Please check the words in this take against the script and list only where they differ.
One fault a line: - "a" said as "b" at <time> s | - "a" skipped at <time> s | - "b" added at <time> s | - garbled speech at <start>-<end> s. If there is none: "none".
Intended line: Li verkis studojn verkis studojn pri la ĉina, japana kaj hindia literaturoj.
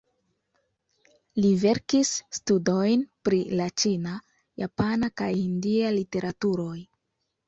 - "verkis studojn" skipped at 3.0 s